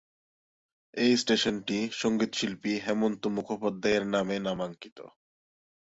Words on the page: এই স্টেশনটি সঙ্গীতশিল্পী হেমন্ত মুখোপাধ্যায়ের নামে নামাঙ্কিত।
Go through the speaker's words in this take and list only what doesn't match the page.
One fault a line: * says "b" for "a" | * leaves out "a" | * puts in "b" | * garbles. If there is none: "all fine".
all fine